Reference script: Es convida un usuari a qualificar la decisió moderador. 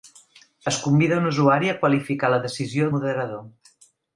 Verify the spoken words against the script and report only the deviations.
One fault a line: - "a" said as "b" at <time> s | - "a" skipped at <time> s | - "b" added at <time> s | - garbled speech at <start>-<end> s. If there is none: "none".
none